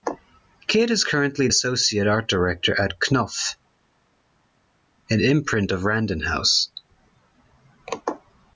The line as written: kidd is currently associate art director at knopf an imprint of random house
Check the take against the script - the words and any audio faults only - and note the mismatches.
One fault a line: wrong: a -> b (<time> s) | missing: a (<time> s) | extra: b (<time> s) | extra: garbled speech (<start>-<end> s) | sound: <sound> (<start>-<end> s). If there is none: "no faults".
no faults